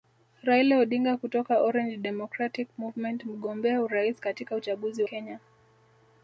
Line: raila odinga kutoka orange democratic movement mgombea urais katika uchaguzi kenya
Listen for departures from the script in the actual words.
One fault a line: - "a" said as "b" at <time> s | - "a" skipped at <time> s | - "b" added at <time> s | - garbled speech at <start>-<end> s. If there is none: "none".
none